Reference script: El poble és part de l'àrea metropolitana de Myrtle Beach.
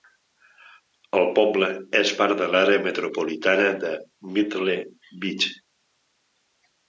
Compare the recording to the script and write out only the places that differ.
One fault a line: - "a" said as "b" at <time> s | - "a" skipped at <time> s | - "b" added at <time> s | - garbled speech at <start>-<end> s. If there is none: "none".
none